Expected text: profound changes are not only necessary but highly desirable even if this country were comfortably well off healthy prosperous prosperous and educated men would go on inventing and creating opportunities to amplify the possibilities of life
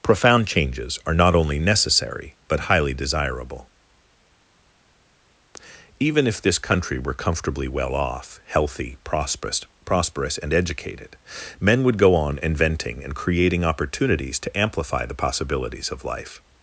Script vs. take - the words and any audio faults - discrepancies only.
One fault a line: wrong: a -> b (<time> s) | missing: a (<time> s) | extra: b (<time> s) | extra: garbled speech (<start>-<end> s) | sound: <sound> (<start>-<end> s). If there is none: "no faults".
no faults